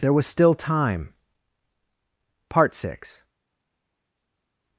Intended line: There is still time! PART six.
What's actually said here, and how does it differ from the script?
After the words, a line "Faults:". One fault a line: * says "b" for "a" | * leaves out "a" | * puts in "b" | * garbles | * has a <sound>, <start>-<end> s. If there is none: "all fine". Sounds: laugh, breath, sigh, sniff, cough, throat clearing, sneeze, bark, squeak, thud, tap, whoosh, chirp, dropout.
There was still time! PART six.
Faults:
* says "was" for "is"